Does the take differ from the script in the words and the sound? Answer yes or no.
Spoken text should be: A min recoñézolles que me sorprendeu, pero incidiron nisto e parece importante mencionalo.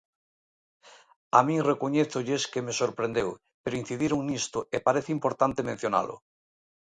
no